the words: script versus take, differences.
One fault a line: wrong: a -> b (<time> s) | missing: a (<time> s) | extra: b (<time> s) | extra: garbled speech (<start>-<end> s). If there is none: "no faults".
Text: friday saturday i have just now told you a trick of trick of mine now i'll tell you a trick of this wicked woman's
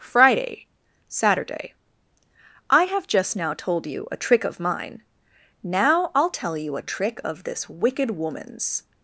missing: trick of (4.6 s)